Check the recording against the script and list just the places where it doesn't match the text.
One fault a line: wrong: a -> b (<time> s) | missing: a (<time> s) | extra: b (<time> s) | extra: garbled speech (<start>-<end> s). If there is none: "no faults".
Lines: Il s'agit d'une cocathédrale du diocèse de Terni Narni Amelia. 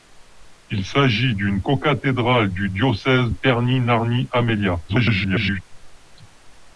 missing: de (3.3 s)
extra: garbled speech (4.9-5.6 s)